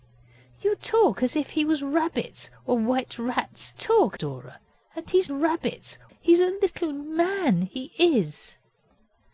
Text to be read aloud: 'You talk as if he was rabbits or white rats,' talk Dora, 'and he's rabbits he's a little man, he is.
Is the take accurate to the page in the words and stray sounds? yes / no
yes